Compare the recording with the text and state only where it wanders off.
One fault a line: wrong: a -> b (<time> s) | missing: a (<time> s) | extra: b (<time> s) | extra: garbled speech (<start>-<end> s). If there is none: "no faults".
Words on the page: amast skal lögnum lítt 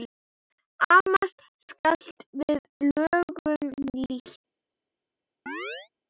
extra: við (2.4 s)